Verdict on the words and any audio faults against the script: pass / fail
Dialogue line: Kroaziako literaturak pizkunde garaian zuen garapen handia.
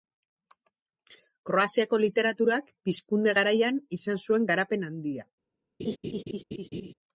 fail